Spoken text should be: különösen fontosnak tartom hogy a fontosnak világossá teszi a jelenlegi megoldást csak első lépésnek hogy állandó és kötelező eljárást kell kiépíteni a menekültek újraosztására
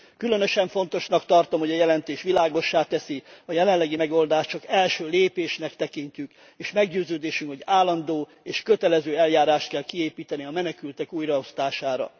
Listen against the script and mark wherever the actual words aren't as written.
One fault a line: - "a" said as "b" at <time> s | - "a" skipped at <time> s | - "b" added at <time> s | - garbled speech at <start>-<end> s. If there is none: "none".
- "fontosnak" said as "jelentés" at 1.8 s
- "tekintjük és meggyőződésünk" added at 5.7 s